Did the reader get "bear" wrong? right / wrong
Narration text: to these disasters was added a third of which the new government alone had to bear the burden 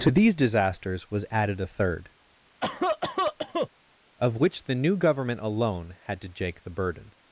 wrong